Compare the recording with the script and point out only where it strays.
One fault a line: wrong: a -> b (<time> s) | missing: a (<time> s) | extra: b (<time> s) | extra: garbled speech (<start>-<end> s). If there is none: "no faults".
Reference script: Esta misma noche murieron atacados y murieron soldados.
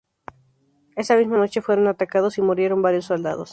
wrong: Esta -> Esa (0.9 s)
wrong: murieron -> fueron (1.6 s)
extra: varios (2.8 s)